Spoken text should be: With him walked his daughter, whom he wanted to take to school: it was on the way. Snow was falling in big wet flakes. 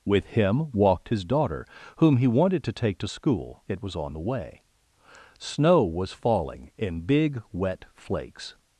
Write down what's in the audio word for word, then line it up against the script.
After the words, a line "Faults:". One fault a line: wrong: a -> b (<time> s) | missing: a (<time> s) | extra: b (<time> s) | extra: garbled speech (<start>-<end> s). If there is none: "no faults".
With him walked his daughter, whom he wanted to take to school: it was on the way. Snow was falling in big wet flakes.
Faults:
no faults